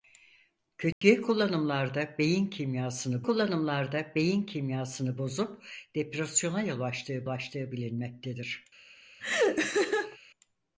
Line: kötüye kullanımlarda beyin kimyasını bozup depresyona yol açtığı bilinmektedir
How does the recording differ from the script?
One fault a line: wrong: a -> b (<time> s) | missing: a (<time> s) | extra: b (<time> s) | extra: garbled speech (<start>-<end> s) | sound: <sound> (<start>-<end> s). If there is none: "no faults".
sound: dropout (0.9-1.0 s)
extra: kullanımlarda beyin kimyasını (3.2 s)
extra: açtığı (7.3 s)
sound: laugh (9.2-10.2 s)